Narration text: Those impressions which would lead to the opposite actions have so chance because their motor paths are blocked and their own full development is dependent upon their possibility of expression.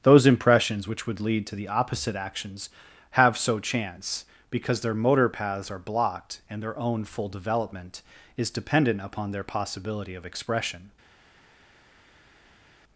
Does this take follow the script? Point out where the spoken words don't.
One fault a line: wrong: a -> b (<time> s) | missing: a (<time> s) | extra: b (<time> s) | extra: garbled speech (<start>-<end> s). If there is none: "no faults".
no faults